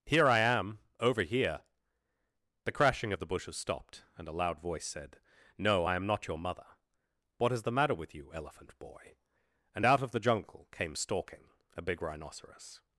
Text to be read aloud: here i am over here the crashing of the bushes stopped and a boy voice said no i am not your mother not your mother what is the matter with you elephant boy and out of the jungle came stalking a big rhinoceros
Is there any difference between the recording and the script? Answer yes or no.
yes